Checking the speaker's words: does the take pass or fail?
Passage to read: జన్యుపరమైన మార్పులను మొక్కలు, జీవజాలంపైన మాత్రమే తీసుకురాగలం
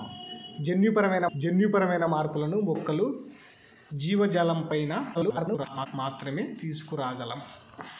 fail